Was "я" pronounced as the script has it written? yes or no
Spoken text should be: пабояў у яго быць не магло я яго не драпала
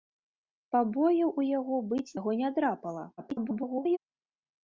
no